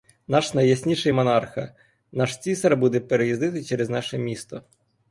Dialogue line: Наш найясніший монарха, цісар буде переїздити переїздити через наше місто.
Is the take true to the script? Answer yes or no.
no